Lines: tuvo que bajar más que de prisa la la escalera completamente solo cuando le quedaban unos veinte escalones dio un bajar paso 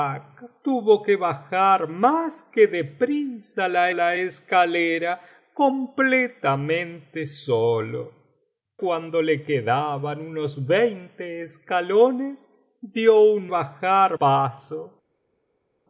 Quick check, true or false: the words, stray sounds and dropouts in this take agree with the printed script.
true